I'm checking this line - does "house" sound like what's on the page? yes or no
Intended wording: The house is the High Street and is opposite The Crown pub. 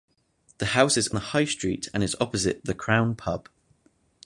yes